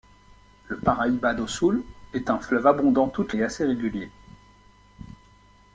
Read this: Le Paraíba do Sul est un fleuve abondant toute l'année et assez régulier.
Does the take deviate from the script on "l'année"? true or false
true